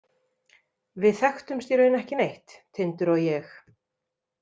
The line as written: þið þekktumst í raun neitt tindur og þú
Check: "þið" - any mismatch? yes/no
yes